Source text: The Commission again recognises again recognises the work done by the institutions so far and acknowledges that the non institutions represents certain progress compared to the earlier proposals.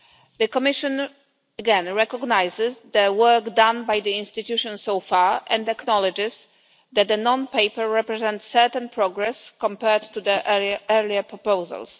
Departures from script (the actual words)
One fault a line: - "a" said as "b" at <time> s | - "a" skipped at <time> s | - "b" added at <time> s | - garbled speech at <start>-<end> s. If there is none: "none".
- "again recognises" skipped at 2.8 s
- "institutions" said as "paper" at 7.5 s